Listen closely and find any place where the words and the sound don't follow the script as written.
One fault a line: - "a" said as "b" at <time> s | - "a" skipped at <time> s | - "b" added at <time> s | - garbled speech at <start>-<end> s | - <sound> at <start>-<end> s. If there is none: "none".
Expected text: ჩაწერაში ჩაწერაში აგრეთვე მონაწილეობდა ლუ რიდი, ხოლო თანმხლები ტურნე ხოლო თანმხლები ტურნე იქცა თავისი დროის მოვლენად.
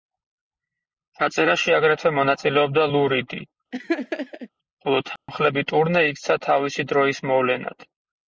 - "ჩაწერაში" skipped at 1.8 s
- laugh at 3.7-4.5 s
- dropout at 5.2-5.3 s
- "ხოლო თანმხლები ტურნე" skipped at 6.0 s